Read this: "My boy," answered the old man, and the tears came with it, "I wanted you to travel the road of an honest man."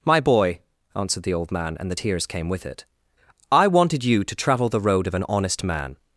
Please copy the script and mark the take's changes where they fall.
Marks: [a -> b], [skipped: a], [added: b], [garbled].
"My boy," answered the old man, and the tears came with it, "I wanted you to travel the road of an honest man."